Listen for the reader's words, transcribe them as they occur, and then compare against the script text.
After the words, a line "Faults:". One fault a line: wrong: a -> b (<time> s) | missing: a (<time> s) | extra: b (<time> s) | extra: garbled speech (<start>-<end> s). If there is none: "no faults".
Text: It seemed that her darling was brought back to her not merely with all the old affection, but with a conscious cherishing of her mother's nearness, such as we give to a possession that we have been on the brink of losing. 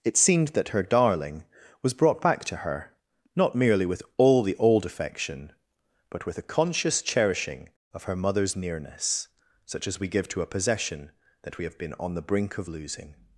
It seemed that her darling was brought back to her not merely with all the old affection, but with a conscious cherishing of her mother's nearness, such as we give to a possession that we have been on the brink of losing.
Faults:
no faults